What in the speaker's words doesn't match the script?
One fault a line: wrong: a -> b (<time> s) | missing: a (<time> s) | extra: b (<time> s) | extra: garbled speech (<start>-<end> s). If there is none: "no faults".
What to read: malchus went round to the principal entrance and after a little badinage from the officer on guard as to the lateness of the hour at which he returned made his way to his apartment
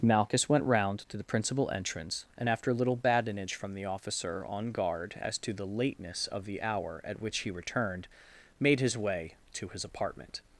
no faults